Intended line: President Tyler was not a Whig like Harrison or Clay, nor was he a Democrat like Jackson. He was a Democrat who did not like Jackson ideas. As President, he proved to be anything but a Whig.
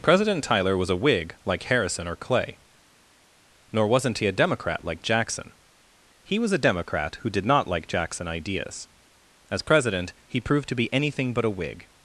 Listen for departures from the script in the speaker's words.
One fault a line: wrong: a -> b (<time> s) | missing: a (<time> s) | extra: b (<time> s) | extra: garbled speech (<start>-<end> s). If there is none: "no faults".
missing: not (0.9 s)
wrong: was -> wasn't (3.9 s)